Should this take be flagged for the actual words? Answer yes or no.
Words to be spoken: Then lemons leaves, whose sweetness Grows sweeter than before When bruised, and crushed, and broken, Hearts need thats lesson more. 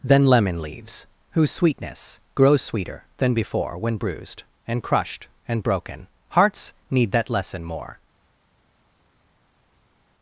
yes